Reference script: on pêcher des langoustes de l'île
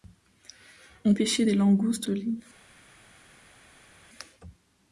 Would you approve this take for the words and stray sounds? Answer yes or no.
yes